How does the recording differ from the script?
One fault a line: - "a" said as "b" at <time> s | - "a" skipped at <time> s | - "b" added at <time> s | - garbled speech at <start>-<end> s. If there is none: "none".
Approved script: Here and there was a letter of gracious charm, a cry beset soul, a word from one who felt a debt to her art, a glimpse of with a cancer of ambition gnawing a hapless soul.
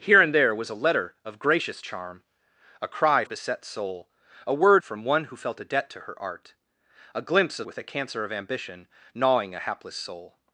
none